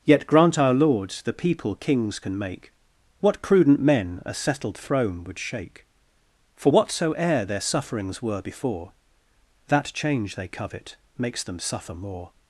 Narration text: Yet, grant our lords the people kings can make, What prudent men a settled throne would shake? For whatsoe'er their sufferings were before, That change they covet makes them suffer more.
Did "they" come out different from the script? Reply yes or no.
no